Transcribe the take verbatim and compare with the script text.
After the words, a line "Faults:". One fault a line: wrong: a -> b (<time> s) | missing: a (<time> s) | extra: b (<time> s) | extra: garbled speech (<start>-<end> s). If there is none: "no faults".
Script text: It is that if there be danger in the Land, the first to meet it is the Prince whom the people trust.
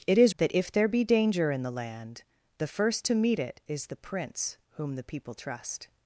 It is that if there be danger in the Land, the first to meet it is the Prince whom the people trust.
Faults:
no faults